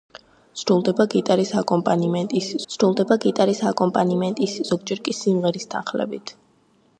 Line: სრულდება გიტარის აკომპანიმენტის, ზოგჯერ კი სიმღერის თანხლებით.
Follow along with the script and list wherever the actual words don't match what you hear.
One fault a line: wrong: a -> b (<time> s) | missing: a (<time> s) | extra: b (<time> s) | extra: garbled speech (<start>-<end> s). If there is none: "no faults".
extra: სრულდება გიტარის აკომპანიმენტის (2.7 s)